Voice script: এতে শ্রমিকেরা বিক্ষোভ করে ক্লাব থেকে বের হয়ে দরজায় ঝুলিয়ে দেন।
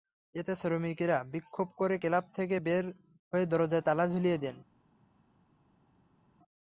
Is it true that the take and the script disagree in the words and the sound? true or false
true